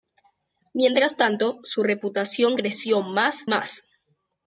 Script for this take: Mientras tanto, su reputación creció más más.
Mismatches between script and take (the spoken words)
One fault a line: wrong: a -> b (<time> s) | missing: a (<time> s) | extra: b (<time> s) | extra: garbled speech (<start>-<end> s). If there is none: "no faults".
no faults